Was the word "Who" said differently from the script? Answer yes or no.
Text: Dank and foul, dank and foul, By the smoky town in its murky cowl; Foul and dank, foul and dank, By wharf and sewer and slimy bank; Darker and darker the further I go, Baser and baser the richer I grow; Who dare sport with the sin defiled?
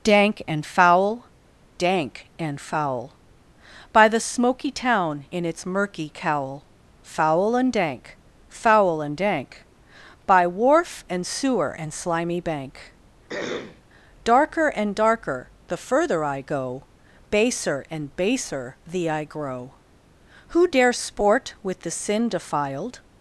no